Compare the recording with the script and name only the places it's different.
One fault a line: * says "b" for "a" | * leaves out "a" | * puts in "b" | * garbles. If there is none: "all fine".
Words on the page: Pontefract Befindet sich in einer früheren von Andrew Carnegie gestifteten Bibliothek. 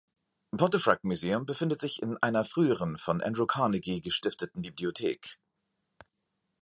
* puts in "Museum"